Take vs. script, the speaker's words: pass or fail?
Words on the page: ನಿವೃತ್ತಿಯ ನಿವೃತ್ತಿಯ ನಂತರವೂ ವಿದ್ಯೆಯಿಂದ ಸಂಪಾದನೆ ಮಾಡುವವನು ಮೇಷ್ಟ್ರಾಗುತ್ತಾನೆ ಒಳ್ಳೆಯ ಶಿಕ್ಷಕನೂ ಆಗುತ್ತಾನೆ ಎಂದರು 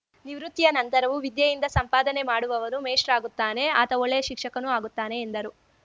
fail